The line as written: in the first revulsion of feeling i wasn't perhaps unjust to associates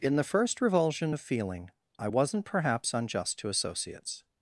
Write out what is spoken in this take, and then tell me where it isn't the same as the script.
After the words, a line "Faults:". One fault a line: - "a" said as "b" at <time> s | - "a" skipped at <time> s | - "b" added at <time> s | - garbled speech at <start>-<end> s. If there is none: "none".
in the first revulsion of feeling i wasn't perhaps unjust to associates
Faults:
none